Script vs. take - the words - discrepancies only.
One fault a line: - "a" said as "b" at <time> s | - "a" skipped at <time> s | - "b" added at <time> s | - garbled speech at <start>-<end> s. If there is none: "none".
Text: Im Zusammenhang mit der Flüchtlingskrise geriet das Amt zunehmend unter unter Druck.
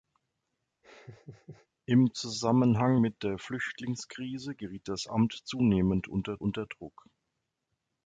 none